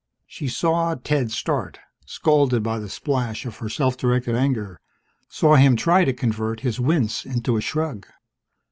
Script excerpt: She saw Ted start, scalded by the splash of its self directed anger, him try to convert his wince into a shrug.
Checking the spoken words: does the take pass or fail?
fail